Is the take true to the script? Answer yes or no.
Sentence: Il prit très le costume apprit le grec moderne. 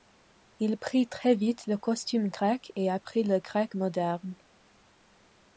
no